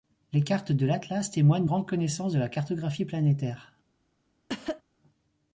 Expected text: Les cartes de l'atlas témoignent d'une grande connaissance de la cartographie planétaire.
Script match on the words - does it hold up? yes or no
no